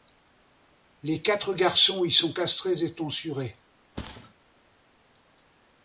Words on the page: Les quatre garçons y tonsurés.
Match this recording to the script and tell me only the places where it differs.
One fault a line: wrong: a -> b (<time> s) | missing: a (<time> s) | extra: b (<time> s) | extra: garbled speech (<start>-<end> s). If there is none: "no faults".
extra: sont castrés et (2.1 s)